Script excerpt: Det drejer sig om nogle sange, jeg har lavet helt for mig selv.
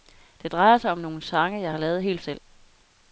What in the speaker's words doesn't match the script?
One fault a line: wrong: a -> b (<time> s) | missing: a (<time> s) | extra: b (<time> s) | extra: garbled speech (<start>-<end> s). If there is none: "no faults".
missing: for mig (2.2 s)